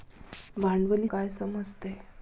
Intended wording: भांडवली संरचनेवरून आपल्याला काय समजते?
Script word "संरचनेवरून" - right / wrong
wrong